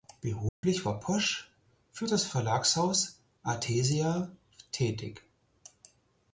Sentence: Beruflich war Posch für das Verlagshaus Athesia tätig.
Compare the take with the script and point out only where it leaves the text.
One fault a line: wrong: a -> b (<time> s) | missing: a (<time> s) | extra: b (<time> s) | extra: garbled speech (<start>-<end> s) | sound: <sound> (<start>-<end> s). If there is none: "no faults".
sound: dropout (0.5-0.6 s)